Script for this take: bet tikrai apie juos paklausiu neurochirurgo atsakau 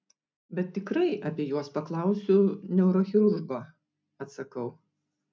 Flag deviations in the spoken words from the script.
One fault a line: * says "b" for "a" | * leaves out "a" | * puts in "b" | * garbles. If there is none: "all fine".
all fine